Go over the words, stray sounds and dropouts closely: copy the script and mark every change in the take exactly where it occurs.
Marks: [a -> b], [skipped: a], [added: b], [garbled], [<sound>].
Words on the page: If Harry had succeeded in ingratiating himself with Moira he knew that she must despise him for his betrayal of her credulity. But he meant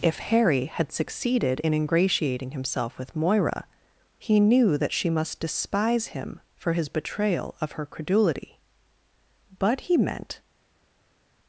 If Harry had succeeded in ingratiating himself with Moira he knew that she must despise him for his betrayal of her credulity. But he meant